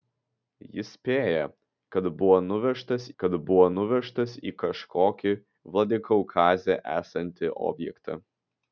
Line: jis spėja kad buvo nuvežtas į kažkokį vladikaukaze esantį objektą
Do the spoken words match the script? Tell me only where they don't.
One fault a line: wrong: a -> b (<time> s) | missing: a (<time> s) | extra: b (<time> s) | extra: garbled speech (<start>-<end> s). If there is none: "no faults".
extra: kad buvo nuvežtas (3.2 s)